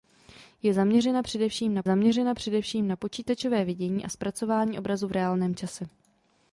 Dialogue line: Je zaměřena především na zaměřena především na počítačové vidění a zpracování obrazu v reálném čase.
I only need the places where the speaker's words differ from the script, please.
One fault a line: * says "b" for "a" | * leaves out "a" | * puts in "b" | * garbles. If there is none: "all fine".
all fine